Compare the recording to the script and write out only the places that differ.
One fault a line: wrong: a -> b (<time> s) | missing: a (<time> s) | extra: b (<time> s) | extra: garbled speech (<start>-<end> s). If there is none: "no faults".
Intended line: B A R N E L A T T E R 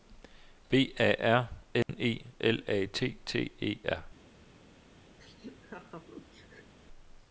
no faults